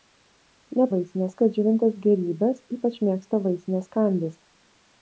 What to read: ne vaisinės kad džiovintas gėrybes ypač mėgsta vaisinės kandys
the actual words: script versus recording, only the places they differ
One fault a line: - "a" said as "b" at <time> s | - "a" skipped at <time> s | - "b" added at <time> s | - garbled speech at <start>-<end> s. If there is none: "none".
none